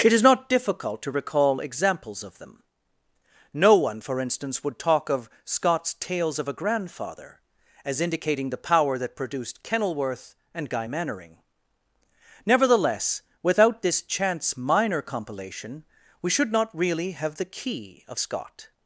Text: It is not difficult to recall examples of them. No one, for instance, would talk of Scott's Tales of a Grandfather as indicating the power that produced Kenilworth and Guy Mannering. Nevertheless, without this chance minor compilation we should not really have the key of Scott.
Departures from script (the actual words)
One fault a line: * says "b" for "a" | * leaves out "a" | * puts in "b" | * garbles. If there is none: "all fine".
all fine